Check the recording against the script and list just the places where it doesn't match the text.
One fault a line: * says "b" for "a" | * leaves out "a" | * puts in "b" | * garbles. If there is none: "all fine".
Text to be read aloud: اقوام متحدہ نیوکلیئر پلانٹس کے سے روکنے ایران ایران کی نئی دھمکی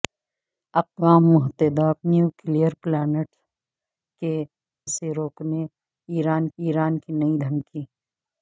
all fine